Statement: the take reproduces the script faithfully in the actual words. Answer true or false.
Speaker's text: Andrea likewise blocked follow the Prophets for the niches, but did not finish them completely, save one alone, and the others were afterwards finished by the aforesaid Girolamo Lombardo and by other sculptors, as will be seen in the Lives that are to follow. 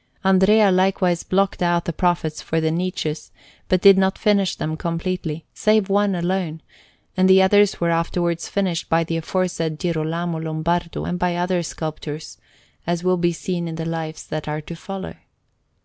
false